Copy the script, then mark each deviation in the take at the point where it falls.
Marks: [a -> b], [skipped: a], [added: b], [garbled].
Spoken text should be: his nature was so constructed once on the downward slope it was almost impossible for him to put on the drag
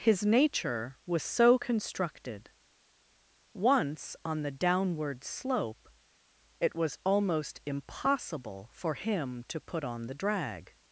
his nature was so constructed once on the downward slope it was almost impossible for him to put on the drag